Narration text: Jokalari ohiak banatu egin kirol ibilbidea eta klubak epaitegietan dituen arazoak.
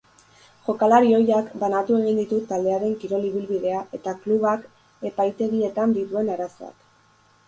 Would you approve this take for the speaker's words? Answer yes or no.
no